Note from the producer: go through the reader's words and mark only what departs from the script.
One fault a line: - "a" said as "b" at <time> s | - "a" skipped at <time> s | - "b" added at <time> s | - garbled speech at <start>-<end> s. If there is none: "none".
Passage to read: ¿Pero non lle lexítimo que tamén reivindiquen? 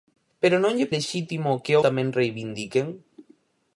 none